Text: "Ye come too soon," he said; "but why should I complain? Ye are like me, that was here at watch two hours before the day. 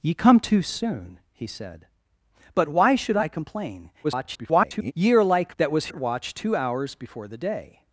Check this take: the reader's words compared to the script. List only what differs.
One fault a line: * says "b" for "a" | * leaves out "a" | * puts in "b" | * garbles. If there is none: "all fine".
* garbles
* leaves out "me"
* leaves out "here"